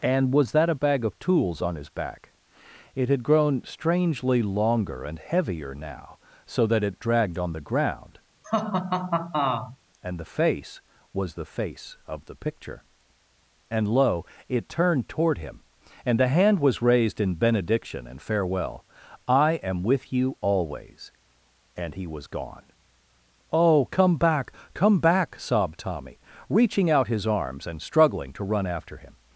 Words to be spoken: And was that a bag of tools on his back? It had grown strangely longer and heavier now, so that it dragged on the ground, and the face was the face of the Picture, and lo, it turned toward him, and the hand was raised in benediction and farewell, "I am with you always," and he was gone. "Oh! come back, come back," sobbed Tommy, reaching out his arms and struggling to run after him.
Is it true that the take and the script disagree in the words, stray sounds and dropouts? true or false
true